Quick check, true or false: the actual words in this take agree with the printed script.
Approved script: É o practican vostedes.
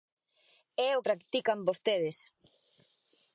true